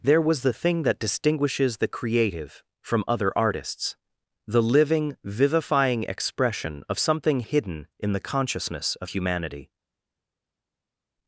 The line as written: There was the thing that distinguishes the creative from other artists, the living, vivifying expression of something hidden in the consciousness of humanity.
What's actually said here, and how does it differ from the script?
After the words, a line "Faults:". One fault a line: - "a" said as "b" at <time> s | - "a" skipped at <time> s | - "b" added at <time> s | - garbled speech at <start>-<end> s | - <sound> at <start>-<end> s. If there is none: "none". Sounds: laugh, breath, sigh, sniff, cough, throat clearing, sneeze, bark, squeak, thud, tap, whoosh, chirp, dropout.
There was the thing that distinguishes the creative from other artists, the living, vivifying expression of something hidden in the consciousness of humanity.
Faults:
none